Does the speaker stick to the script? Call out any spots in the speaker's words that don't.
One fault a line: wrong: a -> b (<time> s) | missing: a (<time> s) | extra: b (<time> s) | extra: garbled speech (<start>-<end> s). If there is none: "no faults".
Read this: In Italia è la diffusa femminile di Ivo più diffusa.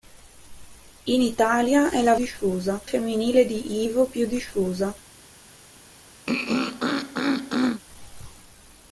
no faults